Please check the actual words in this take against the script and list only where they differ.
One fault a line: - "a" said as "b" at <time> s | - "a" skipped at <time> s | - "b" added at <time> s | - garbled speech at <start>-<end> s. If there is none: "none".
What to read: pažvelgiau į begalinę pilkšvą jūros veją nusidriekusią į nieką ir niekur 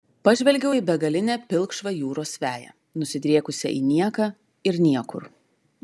none